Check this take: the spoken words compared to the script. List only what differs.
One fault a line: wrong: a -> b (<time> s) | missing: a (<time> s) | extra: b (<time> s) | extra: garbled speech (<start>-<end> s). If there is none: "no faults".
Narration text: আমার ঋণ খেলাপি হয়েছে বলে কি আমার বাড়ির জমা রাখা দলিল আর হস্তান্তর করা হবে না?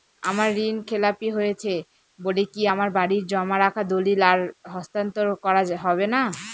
no faults